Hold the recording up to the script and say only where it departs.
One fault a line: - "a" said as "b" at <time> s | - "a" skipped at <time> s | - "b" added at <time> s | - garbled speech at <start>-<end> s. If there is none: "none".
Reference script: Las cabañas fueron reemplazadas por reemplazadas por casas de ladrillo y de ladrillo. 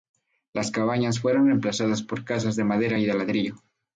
- "reemplazadas por" skipped at 2.2 s
- "ladrillo" said as "madera" at 2.6 s